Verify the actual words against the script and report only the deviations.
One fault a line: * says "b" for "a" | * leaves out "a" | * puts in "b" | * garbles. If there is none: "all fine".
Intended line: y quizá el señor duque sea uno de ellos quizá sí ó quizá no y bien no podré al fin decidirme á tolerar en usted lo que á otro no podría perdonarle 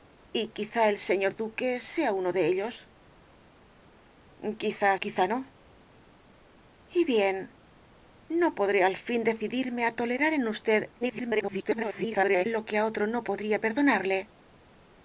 * leaves out "sí ó"
* garbles